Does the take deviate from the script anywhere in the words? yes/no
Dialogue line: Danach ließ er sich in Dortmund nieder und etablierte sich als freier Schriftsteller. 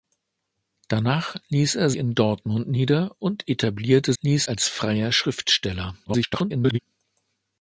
yes